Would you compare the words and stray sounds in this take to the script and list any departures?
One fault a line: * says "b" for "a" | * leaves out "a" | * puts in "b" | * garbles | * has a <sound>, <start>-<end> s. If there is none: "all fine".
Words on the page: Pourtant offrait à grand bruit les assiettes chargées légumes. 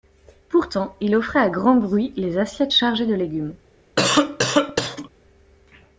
* puts in "il"
* puts in "de"
* has a cough, 4.0-5.1 s